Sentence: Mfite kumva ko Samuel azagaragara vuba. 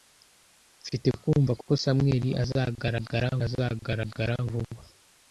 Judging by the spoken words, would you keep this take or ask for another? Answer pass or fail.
fail